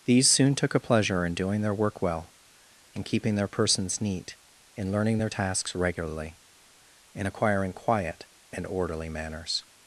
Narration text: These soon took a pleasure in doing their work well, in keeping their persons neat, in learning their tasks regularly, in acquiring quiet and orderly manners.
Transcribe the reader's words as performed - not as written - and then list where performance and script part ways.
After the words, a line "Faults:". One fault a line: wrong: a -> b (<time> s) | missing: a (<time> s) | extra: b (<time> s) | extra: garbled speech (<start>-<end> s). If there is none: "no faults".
These soon took a pleasure in doing their work well, in keeping their persons neat, in learning their tasks regularly, in acquiring quiet and orderly manners.
Faults:
no faults